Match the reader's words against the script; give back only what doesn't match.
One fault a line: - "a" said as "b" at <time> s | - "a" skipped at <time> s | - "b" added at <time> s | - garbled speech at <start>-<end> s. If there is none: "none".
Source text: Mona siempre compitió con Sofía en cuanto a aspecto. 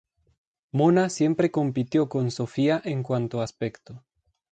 none